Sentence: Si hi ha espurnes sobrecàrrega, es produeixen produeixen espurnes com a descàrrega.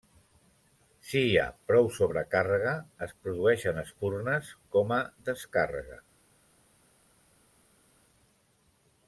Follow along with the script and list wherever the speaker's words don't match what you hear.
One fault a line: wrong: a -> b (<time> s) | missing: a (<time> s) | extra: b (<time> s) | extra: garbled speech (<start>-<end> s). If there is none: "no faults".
wrong: espurnes -> prou (1.7 s)
missing: produeixen (3.8 s)